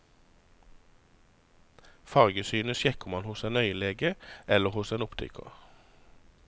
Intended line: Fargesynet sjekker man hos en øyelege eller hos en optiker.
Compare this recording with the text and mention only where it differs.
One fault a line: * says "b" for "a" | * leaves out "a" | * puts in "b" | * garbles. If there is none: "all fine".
all fine